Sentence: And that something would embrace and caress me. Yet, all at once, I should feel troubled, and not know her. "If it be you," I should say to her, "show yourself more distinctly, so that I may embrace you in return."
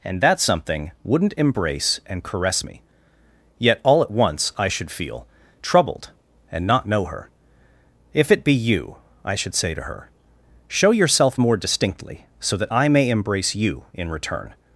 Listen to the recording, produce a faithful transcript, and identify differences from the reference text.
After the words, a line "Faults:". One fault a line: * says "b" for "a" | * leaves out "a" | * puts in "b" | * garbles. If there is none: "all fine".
And that something wouldn't embrace and caress me. Yet, all at once, I should feel troubled, and not know her. "If it be you," I should say to her, "show yourself more distinctly, so that I may embrace you in return."
Faults:
* says "wouldn't" for "would"